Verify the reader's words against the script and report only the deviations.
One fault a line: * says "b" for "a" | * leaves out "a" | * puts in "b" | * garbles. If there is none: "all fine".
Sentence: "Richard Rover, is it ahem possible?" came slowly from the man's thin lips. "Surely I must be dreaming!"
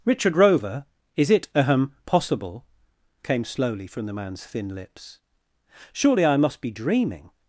all fine